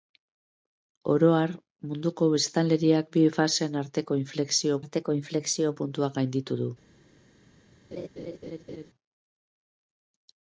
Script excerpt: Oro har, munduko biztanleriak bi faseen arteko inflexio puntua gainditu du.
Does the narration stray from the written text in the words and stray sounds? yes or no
yes